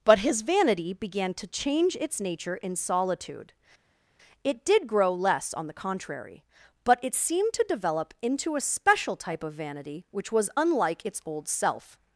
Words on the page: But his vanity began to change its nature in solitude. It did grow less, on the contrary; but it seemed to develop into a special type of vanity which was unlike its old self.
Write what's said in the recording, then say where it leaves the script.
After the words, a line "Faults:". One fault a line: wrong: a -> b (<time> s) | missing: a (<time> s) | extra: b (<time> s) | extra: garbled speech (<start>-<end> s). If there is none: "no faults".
But his vanity began to change its nature in solitude. It did grow less, on the contrary; but it seemed to develop into a special type of vanity which was unlike its old self.
Faults:
no faults